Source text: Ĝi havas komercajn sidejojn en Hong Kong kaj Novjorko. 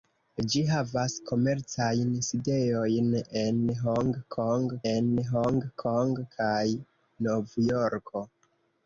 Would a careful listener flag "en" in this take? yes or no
no